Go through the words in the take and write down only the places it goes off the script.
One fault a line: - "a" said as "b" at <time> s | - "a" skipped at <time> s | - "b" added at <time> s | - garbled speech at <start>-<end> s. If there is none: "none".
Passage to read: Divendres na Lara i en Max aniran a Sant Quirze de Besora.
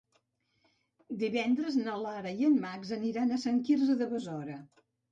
none